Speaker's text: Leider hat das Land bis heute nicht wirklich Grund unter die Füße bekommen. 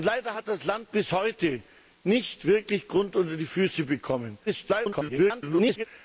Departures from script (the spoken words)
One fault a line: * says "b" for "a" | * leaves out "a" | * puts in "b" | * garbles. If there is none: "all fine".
* garbles